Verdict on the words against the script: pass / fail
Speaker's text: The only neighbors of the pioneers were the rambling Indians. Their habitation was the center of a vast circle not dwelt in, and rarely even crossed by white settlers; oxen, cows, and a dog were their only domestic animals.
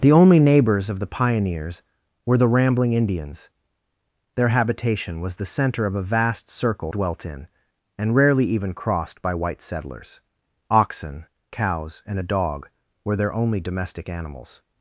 fail